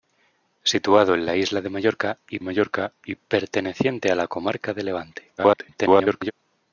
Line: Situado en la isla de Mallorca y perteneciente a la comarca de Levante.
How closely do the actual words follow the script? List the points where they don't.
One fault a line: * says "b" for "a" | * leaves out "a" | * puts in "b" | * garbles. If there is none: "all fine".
* puts in "Mallorca y"
* garbles